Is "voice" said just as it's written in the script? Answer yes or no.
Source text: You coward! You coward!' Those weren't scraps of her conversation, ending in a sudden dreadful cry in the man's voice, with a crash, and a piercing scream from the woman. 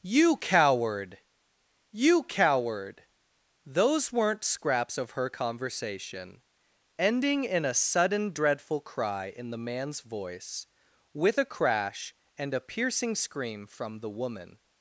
yes